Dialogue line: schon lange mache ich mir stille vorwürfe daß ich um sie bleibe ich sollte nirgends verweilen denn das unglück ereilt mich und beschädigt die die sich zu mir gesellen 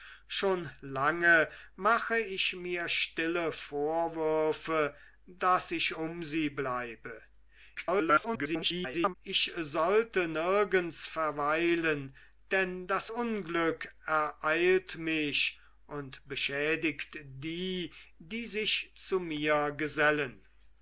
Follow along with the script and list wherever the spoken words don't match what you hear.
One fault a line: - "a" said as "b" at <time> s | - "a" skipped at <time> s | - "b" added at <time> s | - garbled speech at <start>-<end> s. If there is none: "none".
- garbled speech at 7.8-9.2 s